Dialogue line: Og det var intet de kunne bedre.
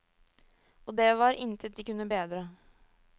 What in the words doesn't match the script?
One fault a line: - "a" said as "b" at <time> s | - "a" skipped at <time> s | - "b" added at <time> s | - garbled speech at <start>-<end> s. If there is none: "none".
none